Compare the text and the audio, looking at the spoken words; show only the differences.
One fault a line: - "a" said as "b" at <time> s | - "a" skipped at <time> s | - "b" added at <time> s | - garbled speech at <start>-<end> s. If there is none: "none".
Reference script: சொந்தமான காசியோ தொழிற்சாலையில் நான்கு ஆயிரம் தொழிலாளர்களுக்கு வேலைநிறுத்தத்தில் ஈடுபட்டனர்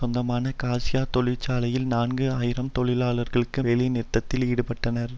none